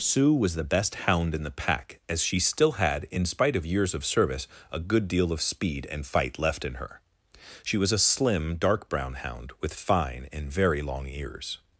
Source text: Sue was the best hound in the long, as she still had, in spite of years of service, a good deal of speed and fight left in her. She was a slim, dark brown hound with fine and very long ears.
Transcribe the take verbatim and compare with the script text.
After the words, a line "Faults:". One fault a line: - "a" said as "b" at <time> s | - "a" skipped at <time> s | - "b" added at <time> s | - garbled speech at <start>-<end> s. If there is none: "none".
Sue was the best hound in the pack, as she still had, in spite of years of service, a good deal of speed and fight left in her. She was a slim, dark brown hound with fine and very long ears.
Faults:
- "long" said as "pack" at 1.5 s